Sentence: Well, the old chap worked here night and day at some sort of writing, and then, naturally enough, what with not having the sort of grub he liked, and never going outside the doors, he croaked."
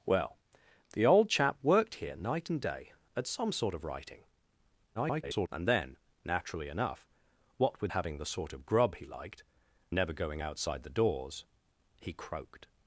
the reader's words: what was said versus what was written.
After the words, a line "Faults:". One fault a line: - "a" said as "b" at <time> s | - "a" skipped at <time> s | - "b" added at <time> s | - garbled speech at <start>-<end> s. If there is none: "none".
Well, the old chap worked here night and day at some sort of writing, [garbled] and then, naturally enough, what with having the sort of grub he liked, never going outside the doors, he croaked."
Faults:
- garbled speech at 4.9-5.5 s
- "not" skipped at 7.9 s
- "and" skipped at 9.4 s